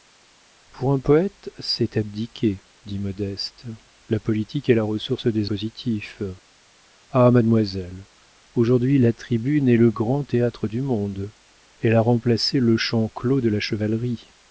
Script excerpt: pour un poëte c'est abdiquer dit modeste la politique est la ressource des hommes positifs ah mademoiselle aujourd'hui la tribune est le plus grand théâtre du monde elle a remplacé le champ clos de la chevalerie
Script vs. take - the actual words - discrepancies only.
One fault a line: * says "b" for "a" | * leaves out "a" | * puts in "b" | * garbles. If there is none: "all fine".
* leaves out "hommes"
* leaves out "plus"